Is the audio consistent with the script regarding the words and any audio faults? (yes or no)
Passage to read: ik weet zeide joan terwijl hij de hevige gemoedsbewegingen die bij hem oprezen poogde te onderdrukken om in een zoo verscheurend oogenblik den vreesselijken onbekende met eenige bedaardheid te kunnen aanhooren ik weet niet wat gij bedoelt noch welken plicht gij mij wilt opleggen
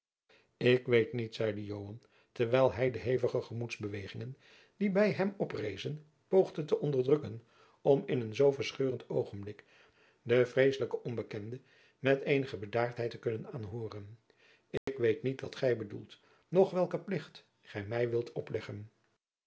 no